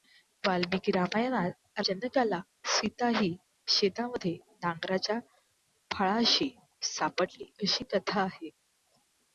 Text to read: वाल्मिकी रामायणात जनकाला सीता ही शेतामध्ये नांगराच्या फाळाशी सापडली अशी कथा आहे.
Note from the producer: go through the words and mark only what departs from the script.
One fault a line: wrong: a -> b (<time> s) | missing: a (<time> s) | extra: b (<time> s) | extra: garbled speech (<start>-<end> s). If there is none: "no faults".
no faults